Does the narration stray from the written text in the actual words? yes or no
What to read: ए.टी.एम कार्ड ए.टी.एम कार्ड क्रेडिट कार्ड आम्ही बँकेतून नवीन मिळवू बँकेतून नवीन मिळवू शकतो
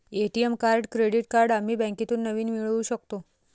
yes